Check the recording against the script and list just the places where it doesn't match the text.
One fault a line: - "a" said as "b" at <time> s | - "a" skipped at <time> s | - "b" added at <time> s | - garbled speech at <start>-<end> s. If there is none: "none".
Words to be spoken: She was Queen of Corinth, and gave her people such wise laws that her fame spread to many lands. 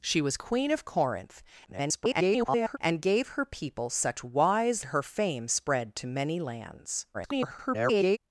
- garbled speech at 1.6-2.8 s
- "laws that" skipped at 4.8 s
- garbled speech at 7.1-8.2 s